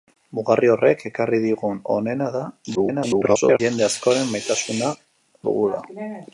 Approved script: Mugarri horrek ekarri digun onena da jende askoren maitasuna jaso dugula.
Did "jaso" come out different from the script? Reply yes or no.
yes